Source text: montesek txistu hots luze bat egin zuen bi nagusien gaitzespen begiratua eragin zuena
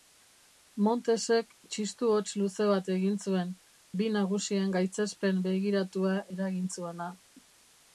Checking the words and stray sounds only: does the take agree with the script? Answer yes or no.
yes